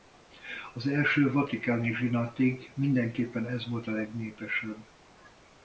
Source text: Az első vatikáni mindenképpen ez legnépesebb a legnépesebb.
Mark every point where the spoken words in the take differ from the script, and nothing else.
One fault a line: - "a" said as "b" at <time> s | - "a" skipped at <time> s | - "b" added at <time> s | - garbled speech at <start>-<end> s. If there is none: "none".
- "zsinatig" added at 1.9 s
- "legnépesebb" said as "volt" at 3.7 s